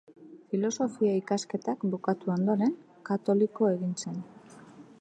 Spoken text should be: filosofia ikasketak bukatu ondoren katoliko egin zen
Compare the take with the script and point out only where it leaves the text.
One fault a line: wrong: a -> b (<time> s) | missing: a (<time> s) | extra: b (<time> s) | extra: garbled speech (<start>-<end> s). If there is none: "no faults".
no faults